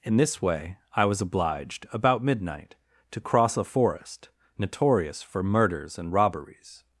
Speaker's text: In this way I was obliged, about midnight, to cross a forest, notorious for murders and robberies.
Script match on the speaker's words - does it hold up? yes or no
yes